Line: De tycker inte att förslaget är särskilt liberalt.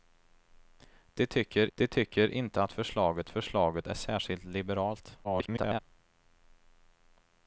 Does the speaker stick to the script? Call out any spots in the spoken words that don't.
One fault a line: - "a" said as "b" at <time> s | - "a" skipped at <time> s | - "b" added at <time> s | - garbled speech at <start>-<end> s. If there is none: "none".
- "de tycker" added at 1.7 s
- "förslaget" added at 3.3 s
- garbled speech at 5.2-5.8 s